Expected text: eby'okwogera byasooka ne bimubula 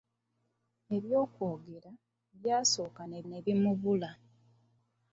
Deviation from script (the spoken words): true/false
true